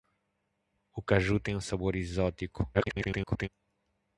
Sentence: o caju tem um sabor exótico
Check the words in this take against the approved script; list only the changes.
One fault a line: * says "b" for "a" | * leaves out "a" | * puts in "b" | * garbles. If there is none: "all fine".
* garbles